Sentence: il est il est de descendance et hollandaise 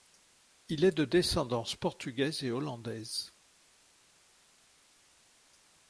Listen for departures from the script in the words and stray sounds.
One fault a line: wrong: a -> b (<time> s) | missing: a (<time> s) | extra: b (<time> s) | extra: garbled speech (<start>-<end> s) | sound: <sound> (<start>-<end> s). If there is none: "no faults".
missing: il est (1.0 s)
extra: portugaise (1.8 s)